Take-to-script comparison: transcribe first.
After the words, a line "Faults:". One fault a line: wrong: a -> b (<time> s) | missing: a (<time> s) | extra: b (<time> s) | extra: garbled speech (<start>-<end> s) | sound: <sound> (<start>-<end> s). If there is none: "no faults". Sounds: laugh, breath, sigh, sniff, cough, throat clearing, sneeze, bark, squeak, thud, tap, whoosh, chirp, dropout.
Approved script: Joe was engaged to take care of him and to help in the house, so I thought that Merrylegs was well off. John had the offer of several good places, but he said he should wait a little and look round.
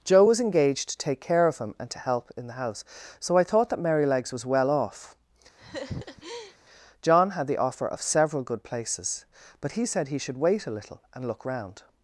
Joe was engaged to take care of him and to help in the house, so I thought that Merrylegs was well off. John had the offer of several good places, but he said he should wait a little and look round.
Faults:
sound: laugh (5.6-6.6 s)